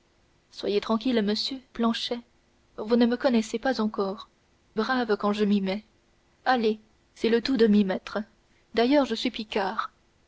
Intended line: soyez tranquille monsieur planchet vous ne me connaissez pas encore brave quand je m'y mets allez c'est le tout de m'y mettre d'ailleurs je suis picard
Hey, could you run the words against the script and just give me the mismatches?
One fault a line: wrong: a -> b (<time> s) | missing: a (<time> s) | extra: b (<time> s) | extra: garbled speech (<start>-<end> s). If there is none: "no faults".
no faults